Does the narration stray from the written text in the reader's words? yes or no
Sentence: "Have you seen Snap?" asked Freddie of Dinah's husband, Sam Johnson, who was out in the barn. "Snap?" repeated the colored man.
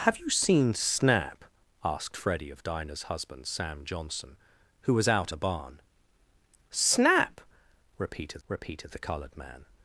yes